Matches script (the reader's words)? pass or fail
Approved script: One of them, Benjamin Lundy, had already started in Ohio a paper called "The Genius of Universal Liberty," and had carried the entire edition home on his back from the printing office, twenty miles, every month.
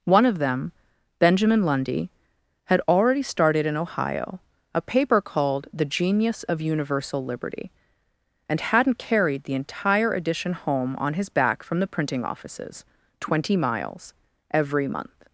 fail